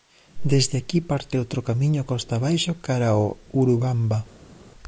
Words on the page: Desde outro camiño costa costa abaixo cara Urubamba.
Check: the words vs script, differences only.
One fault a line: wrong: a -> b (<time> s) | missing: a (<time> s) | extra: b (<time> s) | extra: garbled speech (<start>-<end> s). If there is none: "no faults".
extra: aquí parte (0.8 s)
missing: costa (2.3 s)
extra: ao (3.1 s)